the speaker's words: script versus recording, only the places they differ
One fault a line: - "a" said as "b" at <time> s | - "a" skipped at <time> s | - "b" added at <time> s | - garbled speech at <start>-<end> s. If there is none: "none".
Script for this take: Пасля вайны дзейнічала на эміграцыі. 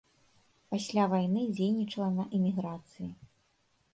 none